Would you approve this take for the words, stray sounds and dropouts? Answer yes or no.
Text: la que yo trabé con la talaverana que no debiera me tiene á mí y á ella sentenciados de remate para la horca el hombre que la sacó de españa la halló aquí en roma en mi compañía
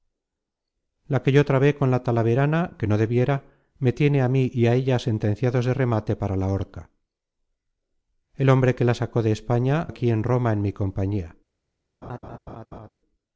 no